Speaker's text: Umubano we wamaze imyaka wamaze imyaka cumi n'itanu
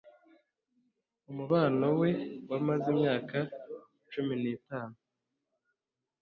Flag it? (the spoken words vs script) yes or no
yes